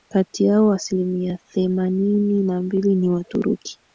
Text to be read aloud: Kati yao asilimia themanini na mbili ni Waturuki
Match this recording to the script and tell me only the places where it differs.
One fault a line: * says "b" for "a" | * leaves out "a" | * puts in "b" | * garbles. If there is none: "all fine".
all fine